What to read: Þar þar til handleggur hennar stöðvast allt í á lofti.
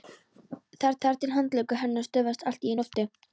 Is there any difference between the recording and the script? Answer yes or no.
no